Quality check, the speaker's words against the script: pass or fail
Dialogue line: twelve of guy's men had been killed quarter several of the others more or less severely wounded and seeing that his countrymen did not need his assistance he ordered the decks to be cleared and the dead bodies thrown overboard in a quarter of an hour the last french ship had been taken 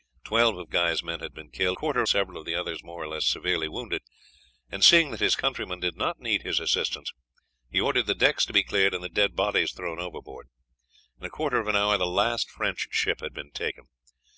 pass